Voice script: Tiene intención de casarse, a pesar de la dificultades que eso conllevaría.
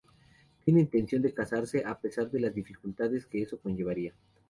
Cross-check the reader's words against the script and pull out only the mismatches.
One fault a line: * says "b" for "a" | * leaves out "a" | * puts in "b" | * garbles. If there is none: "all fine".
* says "las" for "la"